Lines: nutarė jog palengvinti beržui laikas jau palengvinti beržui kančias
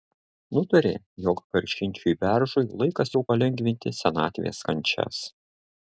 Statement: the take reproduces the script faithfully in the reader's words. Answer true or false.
false